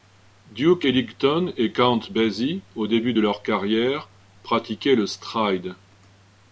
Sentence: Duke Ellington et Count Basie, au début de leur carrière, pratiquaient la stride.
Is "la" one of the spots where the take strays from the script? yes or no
yes